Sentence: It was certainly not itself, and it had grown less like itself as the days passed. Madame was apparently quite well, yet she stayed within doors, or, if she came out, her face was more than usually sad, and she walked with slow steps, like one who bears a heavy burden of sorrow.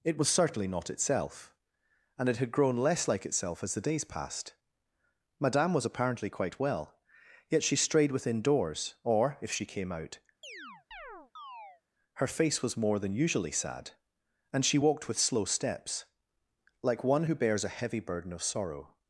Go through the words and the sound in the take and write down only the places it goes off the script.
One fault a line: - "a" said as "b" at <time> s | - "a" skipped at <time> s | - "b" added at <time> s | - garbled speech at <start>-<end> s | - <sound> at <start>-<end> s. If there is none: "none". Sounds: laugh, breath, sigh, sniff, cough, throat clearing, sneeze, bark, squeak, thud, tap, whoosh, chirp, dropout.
- "stayed" said as "strayed" at 7.8 s
- chirp at 10.4-11.8 s